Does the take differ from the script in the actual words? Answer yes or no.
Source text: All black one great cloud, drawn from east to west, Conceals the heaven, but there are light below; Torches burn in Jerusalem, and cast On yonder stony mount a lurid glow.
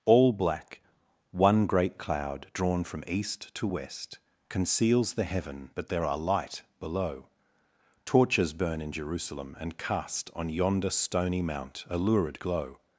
no